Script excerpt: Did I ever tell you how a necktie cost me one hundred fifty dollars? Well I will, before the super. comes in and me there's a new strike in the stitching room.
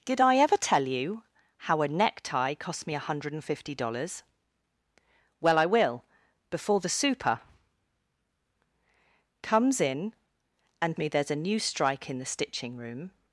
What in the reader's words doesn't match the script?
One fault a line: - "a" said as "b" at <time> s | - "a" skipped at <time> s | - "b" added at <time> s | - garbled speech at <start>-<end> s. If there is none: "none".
none